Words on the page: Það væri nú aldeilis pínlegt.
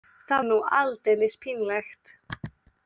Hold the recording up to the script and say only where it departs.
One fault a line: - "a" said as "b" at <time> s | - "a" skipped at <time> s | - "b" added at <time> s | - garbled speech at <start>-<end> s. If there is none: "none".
- "væri" skipped at 0.5 s